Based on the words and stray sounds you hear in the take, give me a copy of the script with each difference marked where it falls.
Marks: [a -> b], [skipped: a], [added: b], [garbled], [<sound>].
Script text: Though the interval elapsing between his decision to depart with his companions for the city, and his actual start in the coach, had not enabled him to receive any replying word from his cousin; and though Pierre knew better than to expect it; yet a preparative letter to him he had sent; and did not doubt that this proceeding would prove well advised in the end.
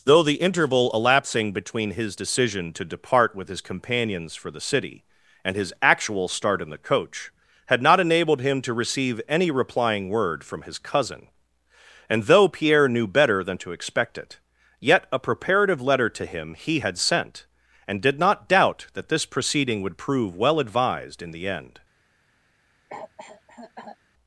Though the interval elapsing between his decision to depart with his companions for the city, and his actual start in the coach, had not enabled him to receive any replying word from his cousin; and though Pierre knew better than to expect it; yet a preparative letter to him he had sent; and did not doubt that this proceeding would prove well advised in the end. [cough]